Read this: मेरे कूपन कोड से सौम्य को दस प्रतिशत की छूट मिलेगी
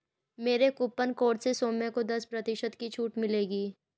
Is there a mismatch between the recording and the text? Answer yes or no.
no